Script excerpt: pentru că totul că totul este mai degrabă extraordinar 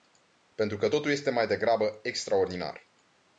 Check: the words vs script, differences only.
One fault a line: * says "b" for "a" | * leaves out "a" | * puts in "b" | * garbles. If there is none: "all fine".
* leaves out "că totul"